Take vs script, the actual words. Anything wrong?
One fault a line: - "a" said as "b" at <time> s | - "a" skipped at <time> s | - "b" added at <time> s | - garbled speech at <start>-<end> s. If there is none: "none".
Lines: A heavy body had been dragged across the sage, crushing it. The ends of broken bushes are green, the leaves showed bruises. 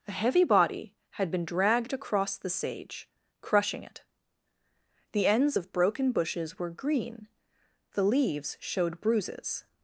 - "are" said as "were" at 6.6 s